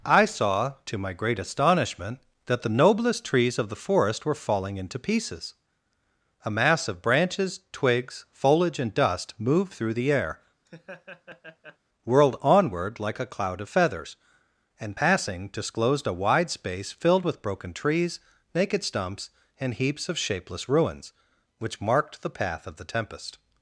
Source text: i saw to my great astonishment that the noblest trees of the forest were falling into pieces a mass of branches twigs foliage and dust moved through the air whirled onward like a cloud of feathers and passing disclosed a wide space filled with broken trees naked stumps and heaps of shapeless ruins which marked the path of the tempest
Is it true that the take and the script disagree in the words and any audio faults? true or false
true